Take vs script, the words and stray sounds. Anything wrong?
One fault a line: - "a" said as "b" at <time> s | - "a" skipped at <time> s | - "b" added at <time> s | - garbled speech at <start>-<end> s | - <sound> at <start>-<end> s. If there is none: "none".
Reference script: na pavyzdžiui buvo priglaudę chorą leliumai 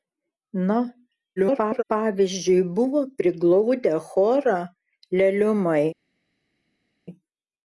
- garbled speech at 1.4-1.8 s